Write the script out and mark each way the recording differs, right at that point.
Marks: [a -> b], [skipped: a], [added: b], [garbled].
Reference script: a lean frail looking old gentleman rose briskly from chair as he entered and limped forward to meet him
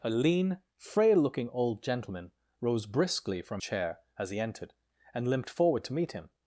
a lean frail looking old gentleman rose briskly from chair as he entered and limped forward to meet him